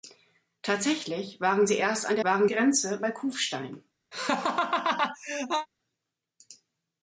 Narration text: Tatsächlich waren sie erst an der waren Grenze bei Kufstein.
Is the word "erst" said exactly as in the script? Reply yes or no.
yes